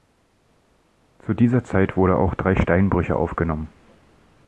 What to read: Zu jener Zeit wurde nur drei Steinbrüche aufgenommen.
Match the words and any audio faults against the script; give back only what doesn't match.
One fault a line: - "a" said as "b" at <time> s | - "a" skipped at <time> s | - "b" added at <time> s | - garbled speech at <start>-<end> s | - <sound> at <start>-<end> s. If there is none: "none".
- "jener" said as "dieser" at 1.3 s
- "nur" said as "auch" at 2.2 s